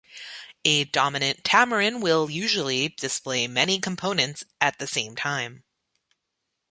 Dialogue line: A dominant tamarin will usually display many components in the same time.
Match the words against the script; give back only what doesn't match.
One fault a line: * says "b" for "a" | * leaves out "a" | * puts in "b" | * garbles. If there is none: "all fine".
* says "at" for "in"